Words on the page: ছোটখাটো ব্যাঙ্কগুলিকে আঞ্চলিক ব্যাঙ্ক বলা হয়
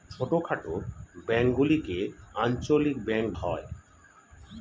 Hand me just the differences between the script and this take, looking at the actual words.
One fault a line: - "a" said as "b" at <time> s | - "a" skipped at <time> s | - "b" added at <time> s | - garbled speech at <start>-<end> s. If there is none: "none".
- "বলা" skipped at 3.3 s